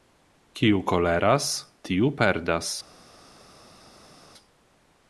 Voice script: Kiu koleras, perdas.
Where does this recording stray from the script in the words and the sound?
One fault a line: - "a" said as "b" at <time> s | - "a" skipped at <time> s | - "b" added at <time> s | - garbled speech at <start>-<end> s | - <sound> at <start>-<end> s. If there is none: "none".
- "tiu" added at 1.9 s